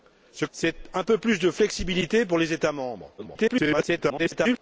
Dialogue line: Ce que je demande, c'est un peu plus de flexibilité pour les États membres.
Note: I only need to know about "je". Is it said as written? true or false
false